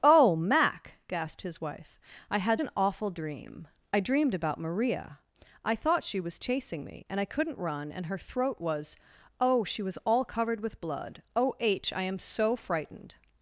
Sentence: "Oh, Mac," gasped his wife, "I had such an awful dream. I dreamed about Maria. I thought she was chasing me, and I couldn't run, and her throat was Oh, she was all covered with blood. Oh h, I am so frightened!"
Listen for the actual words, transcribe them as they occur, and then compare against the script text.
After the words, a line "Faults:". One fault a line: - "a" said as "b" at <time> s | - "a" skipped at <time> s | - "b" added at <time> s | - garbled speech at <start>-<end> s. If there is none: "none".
"Oh, Mac," gasped his wife, "I had an awful dream. I dreamed about Maria. I thought she was chasing me, and I couldn't run, and her throat was Oh, she was all covered with blood. Oh h, I am so frightened!"
Faults:
- "such" skipped at 2.6 s